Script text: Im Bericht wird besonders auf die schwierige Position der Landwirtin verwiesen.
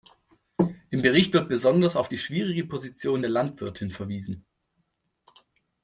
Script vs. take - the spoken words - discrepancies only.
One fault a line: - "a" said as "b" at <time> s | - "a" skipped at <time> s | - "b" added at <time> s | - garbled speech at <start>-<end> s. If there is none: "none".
none